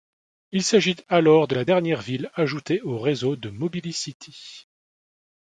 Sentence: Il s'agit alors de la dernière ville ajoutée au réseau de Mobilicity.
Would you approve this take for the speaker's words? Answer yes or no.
yes